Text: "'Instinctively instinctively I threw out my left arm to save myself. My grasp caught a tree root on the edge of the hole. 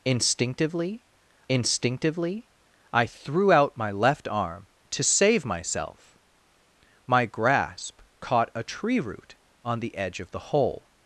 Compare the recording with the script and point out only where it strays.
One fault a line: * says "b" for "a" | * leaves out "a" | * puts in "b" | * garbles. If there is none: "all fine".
all fine